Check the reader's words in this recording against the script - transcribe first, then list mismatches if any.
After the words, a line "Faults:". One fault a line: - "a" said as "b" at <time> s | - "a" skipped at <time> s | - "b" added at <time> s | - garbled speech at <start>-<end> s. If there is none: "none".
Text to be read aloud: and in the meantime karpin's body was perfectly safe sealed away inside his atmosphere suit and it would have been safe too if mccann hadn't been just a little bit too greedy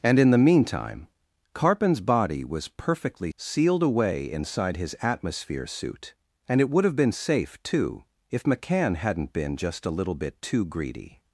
and in the meantime karpin's body was perfectly sealed away inside his atmosphere suit and it would have been safe too if mccann hadn't been just a little bit too greedy
Faults:
- "safe" skipped at 3.3 s